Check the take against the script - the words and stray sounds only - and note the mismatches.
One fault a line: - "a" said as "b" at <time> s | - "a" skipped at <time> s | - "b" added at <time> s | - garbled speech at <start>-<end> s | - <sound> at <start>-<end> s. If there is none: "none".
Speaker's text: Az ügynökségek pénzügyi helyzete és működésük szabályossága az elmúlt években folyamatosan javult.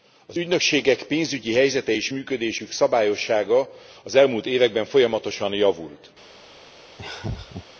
- laugh at 7.0-7.7 s